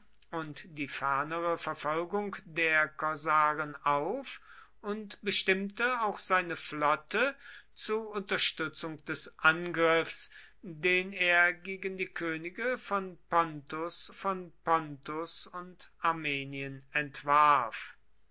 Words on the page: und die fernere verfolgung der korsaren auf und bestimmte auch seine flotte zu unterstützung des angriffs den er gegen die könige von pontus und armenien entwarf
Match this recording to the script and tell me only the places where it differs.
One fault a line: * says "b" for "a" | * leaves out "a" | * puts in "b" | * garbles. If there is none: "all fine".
* puts in "von pontus"